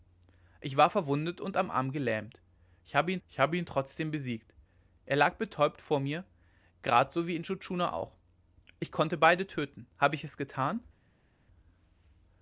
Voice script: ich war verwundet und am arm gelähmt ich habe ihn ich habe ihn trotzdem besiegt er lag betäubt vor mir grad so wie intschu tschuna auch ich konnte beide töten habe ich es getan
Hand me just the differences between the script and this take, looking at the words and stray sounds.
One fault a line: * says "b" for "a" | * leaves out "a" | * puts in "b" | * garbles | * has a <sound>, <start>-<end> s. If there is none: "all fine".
all fine